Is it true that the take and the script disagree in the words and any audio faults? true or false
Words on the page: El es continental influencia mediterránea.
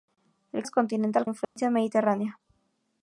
true